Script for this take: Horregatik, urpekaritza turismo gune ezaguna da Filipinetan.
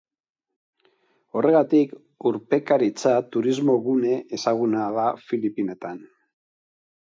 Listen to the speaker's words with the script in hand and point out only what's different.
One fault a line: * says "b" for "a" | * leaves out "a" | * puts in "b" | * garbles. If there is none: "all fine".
all fine